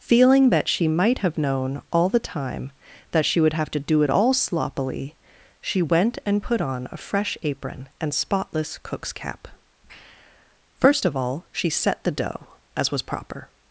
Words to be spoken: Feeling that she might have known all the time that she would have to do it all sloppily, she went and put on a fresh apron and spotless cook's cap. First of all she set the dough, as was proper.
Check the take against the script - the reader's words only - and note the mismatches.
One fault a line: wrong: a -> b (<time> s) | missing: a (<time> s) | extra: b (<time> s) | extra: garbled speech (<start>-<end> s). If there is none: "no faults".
no faults